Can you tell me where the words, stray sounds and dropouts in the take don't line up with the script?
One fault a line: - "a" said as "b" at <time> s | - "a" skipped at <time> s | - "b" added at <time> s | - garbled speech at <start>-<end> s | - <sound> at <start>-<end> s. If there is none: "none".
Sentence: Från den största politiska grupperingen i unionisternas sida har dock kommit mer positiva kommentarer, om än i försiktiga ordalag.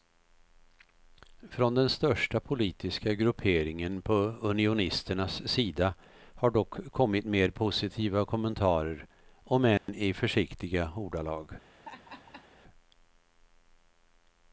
- "i" said as "på" at 4.0 s
- dropout at 9.8-9.9 s
- laugh at 11.7-12.5 s